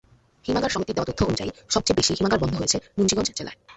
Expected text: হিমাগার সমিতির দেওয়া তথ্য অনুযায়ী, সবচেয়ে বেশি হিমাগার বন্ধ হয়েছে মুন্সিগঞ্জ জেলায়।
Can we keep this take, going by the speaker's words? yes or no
yes